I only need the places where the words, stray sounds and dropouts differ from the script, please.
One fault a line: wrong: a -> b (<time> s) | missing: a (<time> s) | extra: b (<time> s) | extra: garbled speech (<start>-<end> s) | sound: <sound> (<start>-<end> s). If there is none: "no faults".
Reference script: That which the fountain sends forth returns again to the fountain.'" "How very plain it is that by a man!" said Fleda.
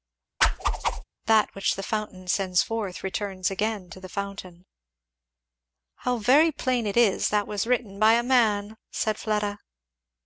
sound: whoosh (0.4-1.0 s)
extra: was written (7.5 s)